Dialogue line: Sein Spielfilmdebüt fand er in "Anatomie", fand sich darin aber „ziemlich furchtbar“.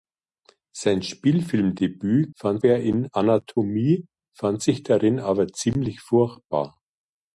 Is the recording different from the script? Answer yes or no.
no